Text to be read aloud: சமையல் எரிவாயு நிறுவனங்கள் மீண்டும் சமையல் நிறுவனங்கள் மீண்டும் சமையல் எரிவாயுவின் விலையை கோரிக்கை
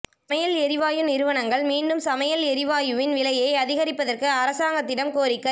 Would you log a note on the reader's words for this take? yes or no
yes